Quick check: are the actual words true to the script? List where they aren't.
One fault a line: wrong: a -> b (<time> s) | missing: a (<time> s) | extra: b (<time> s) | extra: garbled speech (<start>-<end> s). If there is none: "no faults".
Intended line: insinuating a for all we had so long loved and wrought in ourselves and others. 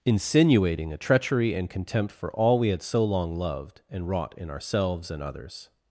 extra: treachery and contempt (1.0 s)